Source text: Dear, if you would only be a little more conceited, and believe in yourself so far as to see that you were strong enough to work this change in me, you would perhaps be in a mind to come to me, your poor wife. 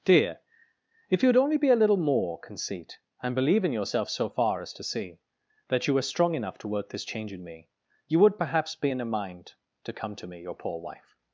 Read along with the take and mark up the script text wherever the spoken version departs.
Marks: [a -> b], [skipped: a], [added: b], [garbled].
Dear, if you would only be a little more [conceited, -> conceit] and believe in yourself so far as to see that you were strong enough to work this change in me, you would perhaps be in a mind to come to me, your poor wife.